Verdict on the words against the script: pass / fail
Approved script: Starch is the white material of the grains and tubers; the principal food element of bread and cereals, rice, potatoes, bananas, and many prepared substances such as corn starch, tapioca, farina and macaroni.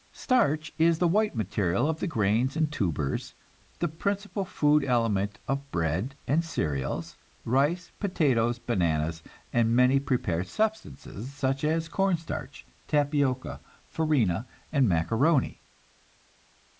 pass